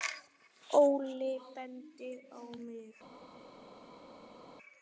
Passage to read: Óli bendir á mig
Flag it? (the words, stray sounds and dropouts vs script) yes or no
no